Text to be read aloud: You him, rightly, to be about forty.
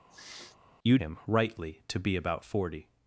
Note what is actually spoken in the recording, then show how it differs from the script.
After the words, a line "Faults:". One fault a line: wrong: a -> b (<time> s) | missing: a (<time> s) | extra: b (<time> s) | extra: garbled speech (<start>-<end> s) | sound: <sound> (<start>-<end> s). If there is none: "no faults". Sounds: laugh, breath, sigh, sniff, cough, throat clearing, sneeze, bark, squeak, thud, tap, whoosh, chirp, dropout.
You him, rightly, to be about forty.
Faults:
sound: sniff (0.1-0.6 s)